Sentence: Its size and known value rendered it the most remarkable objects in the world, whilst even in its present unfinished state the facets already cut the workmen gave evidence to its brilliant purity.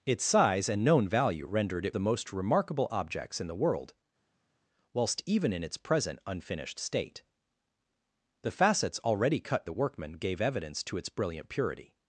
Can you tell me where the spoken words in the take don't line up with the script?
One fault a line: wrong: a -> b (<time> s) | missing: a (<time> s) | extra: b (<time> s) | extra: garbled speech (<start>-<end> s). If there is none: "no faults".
no faults